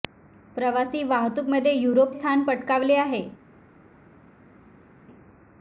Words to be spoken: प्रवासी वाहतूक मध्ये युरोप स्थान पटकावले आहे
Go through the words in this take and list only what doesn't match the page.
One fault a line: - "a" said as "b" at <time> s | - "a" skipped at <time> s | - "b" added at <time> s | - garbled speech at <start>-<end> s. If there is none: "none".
none